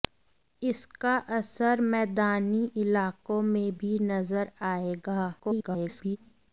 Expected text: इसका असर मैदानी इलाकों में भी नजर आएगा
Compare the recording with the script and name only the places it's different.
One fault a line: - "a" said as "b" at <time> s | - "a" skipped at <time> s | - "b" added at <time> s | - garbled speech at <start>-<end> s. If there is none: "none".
- garbled speech at 5.4-6.2 s